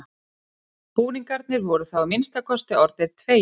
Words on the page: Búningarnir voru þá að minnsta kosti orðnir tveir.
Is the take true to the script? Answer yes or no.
yes